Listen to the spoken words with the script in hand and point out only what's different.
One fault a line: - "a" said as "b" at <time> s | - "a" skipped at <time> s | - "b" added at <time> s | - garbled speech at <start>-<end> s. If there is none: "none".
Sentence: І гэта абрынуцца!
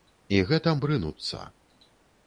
none